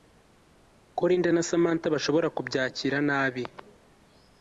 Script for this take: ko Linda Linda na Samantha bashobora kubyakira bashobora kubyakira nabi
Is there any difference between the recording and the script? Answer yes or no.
yes